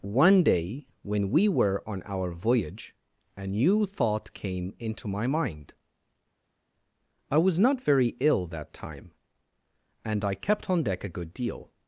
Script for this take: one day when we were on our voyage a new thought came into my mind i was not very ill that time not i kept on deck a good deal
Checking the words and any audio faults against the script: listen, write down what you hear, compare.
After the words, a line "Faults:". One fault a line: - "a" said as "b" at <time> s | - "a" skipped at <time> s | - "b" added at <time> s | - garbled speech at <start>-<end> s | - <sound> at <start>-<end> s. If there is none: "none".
one day when we were on our voyage a new thought came into my mind i was not very ill that time and i kept on deck a good deal
Faults:
- "not" said as "and" at 10.1 s